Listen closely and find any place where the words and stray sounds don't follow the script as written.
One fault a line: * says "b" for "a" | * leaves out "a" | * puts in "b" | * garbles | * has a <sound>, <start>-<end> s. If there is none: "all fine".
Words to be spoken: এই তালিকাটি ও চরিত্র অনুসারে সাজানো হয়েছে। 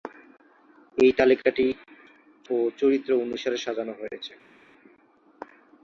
all fine